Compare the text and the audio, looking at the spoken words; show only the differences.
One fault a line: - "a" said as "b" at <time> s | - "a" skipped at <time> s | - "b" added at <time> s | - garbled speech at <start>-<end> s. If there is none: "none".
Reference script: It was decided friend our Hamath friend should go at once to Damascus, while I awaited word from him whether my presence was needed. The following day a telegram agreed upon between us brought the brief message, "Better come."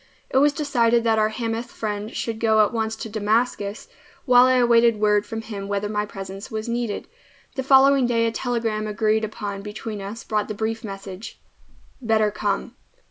- "friend" said as "that" at 1.0 s